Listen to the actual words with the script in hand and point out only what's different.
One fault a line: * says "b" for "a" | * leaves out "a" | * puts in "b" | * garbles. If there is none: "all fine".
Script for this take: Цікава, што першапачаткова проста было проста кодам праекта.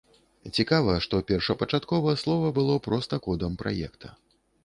* says "слова" for "проста"